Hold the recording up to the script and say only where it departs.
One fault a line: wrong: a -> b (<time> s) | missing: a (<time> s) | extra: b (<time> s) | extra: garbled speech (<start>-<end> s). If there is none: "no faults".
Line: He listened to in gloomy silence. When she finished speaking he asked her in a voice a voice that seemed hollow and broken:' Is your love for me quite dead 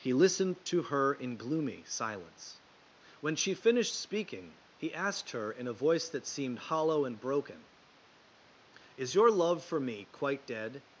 extra: her (0.8 s)
missing: a voice (6.1 s)